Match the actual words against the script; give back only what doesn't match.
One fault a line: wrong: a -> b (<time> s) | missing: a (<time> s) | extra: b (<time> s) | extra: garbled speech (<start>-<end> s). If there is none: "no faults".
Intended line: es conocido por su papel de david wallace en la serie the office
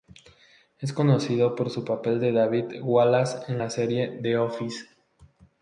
no faults